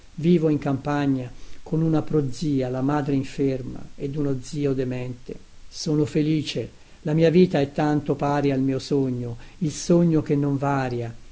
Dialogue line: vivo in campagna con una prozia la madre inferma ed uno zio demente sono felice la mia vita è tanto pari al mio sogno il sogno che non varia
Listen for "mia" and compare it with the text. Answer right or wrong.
right